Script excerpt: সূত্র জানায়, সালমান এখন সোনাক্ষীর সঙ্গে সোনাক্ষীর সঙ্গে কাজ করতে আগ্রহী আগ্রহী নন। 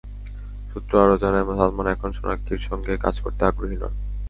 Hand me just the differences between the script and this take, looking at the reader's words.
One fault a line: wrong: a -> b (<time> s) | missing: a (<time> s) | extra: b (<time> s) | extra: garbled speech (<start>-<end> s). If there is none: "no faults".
extra: আরও (1.0 s)
missing: সোনাক্ষীর সঙ্গে (2.9 s)
missing: আগ্রহী (3.8 s)